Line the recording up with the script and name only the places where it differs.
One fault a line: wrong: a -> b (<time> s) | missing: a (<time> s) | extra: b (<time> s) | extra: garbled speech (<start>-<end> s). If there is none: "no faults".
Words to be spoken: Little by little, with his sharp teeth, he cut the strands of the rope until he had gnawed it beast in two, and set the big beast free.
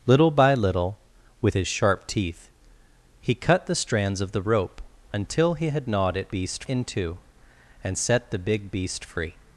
no faults